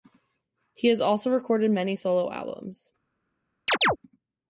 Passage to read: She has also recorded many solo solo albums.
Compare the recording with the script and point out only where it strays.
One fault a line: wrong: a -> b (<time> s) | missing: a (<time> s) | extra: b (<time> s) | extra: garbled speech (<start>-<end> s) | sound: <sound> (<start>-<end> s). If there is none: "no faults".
wrong: She -> He (0.7 s)
missing: solo (2.3 s)
sound: chirp (3.7-4.0 s)